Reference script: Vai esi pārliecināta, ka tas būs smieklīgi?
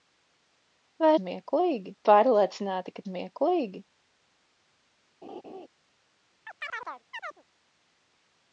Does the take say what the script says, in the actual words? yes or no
no